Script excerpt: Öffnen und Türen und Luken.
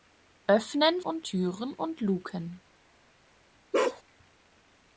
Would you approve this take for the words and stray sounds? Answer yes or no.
no